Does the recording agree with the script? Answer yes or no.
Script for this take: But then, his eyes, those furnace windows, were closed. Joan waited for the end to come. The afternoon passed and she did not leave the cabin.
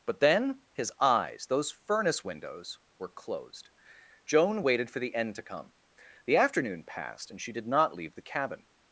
yes